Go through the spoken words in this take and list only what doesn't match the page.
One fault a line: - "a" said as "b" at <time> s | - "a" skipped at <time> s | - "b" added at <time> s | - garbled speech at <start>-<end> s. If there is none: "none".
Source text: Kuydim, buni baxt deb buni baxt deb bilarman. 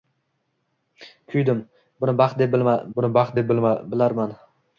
none